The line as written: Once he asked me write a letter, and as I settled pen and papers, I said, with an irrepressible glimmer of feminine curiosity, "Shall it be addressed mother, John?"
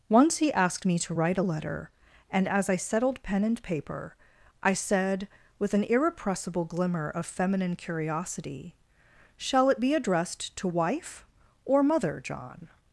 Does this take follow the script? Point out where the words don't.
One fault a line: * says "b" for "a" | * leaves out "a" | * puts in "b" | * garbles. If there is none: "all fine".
* puts in "to"
* says "paper" for "papers"
* puts in "to wife or"